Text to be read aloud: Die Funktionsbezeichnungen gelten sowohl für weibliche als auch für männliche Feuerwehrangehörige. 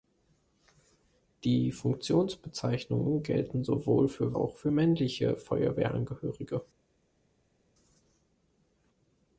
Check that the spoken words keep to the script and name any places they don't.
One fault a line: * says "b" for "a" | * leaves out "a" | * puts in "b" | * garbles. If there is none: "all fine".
* leaves out "weibliche als"